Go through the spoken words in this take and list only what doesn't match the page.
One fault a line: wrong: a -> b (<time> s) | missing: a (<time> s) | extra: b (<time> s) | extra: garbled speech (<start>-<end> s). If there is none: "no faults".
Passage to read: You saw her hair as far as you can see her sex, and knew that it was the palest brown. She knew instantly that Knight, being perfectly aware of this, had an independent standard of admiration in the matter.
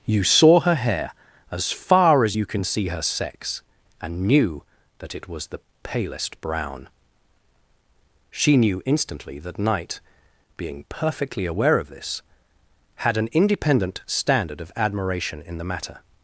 no faults